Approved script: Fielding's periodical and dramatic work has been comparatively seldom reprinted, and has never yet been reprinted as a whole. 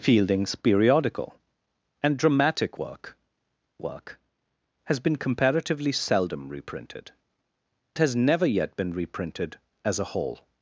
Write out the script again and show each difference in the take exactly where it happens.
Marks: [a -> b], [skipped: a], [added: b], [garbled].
Fielding's periodical and dramatic work [added: work] has been comparatively seldom reprinted, [skipped: and] has never yet been reprinted as a whole.